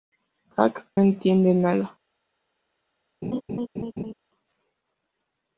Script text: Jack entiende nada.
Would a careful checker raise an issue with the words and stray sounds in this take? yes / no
yes